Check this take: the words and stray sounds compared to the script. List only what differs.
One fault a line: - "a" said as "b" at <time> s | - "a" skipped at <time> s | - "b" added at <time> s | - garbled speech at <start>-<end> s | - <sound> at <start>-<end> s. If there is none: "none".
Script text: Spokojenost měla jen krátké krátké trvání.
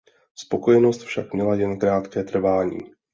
- "však" added at 1.0 s
- "krátké" skipped at 2.2 s